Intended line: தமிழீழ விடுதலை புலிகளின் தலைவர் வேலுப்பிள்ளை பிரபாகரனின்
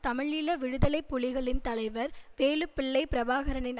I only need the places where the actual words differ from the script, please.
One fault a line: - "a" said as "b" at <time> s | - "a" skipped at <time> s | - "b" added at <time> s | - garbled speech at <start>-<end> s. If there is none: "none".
none